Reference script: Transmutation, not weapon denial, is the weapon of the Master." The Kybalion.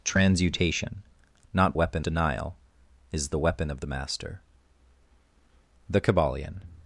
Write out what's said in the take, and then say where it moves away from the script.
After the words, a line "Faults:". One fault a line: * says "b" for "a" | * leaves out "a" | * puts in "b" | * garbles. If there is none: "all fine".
Transmutation, not weapon denial, is the weapon of the Master." The Kybalion.
Faults:
all fine